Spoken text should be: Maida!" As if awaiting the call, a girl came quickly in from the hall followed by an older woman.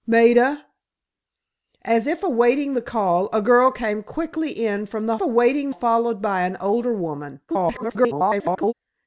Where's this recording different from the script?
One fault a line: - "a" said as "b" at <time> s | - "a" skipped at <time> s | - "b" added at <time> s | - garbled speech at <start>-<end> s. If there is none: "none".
- "hall" said as "awaiting" at 5.2 s
- garbled speech at 7.5-8.7 s